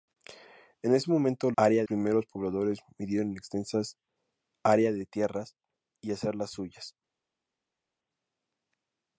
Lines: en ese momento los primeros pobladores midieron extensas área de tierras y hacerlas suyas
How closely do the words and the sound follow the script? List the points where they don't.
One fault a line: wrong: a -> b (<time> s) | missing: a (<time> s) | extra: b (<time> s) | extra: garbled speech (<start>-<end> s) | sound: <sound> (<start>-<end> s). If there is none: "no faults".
wrong: los -> área (1.6 s)